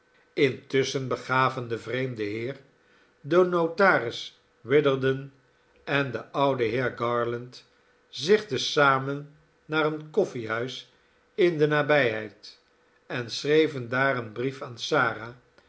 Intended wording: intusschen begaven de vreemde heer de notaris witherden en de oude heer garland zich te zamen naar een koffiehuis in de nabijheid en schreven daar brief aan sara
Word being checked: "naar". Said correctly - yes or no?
yes